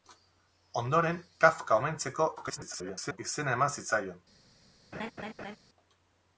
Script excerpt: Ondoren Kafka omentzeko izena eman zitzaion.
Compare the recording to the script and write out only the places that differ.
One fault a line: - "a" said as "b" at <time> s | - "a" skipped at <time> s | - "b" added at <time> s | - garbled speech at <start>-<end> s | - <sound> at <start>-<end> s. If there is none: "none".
- garbled speech at 2.4-3.2 s
- laugh at 4.9-5.6 s